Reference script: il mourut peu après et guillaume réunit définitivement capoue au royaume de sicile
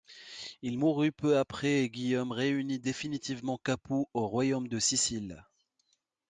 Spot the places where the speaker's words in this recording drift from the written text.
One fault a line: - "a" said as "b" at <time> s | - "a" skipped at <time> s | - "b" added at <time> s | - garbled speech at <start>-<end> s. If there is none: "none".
none